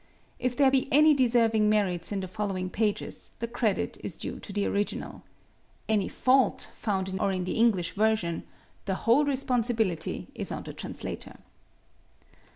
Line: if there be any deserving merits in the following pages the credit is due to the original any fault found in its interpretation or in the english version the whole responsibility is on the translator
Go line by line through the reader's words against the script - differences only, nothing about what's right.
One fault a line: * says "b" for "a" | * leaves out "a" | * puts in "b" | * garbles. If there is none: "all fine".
* leaves out "its interpretation"